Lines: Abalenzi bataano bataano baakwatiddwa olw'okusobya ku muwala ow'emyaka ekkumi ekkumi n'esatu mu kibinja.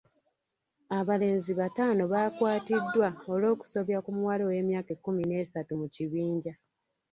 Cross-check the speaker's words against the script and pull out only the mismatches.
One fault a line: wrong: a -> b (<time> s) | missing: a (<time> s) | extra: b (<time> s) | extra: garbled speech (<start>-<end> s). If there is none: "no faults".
missing: bataano (2.0 s)
missing: ekkumi (5.2 s)